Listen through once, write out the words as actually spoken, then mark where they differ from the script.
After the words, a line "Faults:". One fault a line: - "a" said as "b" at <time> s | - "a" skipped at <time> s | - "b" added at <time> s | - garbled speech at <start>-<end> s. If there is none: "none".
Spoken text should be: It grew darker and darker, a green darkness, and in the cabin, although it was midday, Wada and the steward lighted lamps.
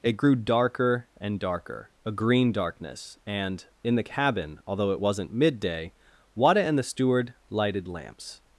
It grew darker and darker, a green darkness, and in the cabin, although it wasn't midday, Wada and the steward lighted lamps.
Faults:
- "was" said as "wasn't" at 5.0 s